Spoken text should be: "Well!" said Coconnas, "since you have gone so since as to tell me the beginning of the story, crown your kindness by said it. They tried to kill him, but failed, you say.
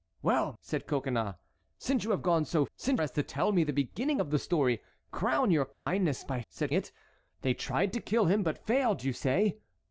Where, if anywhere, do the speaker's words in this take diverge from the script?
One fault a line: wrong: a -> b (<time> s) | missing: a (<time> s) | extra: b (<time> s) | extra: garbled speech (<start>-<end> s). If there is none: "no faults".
no faults